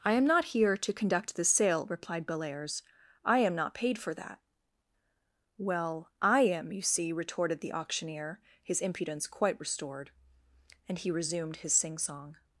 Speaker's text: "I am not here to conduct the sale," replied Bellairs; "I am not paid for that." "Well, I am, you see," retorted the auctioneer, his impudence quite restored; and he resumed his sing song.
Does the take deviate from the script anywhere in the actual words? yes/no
no